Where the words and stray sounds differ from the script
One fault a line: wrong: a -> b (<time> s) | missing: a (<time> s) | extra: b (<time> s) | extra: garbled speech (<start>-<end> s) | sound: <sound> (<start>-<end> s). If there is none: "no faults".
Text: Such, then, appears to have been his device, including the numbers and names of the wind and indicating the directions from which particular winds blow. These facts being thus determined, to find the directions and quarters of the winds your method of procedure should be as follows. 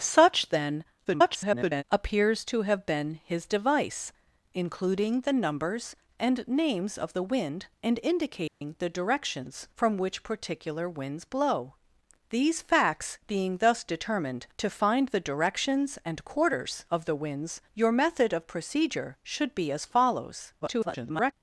extra: garbled speech (1.0-1.8 s)
sound: dropout (8.5-8.6 s)
extra: garbled speech (20.6-21.3 s)